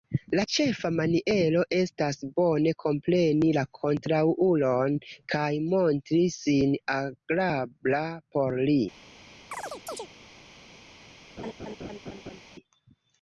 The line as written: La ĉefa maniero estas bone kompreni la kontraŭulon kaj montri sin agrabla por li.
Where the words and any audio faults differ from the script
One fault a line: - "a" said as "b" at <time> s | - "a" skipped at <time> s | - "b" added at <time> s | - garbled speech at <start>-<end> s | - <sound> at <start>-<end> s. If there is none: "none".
- chirp at 9.5-10.1 s
- laugh at 11.4-12.4 s